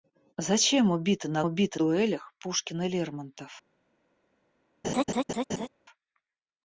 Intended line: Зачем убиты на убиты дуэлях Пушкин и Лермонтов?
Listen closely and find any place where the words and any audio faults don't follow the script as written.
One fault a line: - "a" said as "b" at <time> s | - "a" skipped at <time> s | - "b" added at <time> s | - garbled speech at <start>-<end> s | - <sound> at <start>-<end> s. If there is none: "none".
- laugh at 4.8-5.7 s